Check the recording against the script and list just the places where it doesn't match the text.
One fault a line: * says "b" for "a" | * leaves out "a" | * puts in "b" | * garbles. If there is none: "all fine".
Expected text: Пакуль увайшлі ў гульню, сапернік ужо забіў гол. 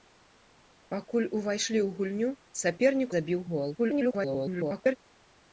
* leaves out "ужо"
* garbles